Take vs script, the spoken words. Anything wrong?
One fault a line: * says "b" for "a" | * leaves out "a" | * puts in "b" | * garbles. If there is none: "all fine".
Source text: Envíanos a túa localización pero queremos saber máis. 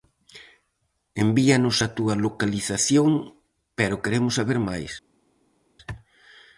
all fine